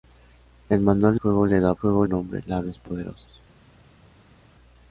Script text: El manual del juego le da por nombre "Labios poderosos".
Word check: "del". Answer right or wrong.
wrong